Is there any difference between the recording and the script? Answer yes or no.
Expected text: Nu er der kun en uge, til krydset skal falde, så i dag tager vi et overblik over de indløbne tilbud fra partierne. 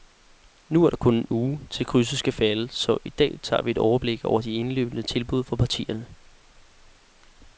no